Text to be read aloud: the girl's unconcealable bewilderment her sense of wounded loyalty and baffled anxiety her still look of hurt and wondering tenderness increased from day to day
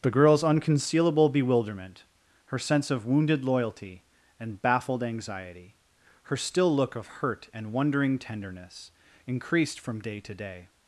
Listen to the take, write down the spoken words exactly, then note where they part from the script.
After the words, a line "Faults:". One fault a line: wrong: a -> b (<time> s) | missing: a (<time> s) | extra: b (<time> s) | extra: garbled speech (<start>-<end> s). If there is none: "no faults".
the girl's unconcealable bewilderment her sense of wounded loyalty and baffled anxiety her still look of hurt and wondering tenderness increased from day to day
Faults:
no faults